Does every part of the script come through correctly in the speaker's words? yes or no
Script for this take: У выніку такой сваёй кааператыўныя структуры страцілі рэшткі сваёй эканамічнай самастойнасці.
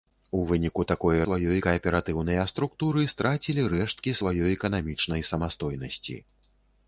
yes